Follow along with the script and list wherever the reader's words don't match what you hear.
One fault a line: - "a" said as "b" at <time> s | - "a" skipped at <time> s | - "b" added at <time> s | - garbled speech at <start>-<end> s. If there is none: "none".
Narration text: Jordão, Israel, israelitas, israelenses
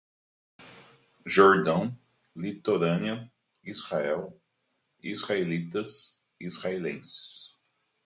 - "litorânea" added at 2.4 s